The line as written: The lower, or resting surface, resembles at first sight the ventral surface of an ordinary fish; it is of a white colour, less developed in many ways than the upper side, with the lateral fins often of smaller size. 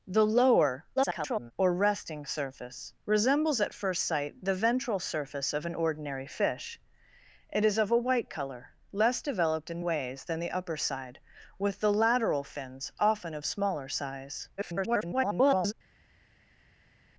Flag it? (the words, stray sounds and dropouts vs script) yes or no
yes